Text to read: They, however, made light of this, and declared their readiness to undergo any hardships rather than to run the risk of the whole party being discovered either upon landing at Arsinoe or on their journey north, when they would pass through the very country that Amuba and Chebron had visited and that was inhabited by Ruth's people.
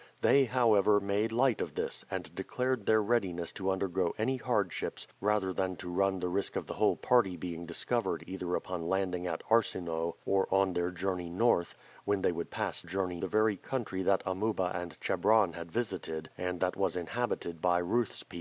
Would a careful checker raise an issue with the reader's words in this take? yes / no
yes